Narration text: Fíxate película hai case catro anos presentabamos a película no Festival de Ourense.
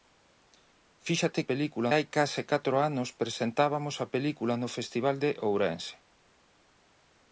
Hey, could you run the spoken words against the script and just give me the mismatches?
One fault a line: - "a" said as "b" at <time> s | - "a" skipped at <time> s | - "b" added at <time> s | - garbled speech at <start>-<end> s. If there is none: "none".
none